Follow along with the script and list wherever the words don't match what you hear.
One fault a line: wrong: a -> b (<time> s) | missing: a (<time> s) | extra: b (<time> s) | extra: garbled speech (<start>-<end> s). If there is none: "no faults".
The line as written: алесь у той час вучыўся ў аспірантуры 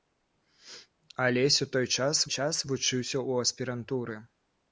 extra: час (2.3 s)